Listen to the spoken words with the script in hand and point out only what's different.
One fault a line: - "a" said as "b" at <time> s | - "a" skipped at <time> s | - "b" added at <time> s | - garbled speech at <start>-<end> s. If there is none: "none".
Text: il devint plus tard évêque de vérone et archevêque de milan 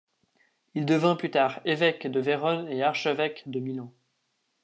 none